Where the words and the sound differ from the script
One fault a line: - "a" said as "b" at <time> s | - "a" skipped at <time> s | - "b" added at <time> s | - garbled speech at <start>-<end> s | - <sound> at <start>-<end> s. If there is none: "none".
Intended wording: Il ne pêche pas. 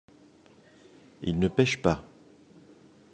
none